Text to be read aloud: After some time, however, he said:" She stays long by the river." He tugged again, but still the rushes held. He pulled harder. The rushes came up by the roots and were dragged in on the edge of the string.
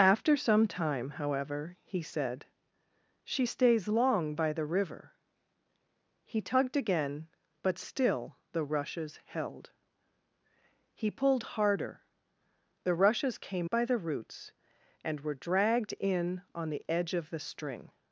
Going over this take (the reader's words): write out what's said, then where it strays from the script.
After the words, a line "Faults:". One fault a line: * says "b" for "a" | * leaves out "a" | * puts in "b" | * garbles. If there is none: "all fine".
After some time, however, he said:" She stays long by the river." He tugged again, but still the rushes held. He pulled harder. The rushes came by the roots and were dragged in on the edge of the string.
Faults:
* leaves out "up"